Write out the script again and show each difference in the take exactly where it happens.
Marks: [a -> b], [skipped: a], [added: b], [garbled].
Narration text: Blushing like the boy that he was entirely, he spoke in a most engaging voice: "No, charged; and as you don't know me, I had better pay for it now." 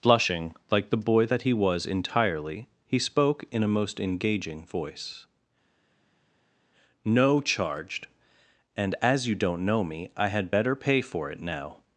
Blushing like the boy that he was entirely, he spoke in a most engaging voice: "No, charged; and as you don't know me, I had better pay for it now."